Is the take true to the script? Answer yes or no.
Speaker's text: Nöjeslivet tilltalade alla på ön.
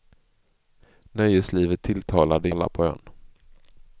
yes